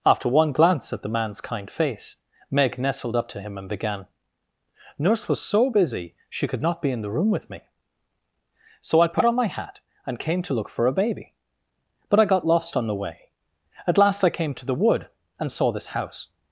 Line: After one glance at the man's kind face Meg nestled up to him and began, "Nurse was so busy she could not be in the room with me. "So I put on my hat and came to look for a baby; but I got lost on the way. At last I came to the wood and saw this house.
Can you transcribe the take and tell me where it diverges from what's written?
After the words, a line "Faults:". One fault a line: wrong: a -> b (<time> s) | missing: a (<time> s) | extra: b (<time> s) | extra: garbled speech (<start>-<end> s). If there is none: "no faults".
After one glance at the man's kind face Meg nestled up to him and began, "Nurse was so busy she could not be in the room with me. "So I put on my hat and came to look for a baby; but I got lost on the way. At last I came to the wood and saw this house.
Faults:
no faults